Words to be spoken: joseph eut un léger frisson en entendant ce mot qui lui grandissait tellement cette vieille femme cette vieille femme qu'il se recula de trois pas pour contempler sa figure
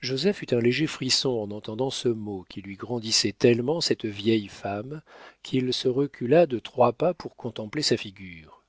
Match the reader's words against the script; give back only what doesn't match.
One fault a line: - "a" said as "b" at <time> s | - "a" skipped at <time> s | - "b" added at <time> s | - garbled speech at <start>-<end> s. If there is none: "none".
- "cette vieille femme" skipped at 5.0 s